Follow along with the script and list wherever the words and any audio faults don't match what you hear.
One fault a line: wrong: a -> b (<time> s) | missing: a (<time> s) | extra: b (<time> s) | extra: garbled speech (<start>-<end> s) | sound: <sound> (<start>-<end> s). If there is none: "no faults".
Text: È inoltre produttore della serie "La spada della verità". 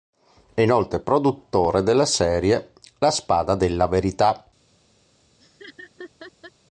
sound: laugh (5.4-6.5 s)